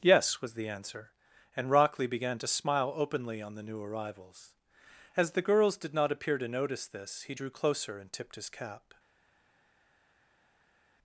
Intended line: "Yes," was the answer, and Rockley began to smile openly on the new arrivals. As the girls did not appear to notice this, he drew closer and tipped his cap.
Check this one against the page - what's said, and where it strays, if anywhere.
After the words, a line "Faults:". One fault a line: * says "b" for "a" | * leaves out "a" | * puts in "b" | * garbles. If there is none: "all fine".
"Yes," was the answer, and Rockley began to smile openly on the new arrivals. As the girls did not appear to notice this, he drew closer and tipped his cap.
Faults:
all fine